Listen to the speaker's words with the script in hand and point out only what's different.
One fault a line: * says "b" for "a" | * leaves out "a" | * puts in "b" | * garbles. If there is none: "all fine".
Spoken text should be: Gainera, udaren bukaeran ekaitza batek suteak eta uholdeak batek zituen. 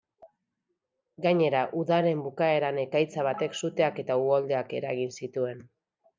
* says "eragin" for "batek"